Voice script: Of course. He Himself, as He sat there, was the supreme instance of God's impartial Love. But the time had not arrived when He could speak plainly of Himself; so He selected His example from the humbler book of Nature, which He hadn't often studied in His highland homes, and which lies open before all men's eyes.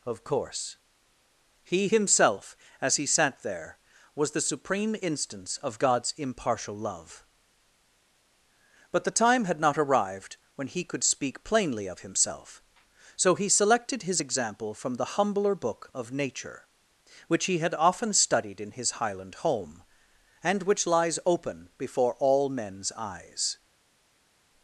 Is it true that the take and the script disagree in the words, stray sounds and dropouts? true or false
true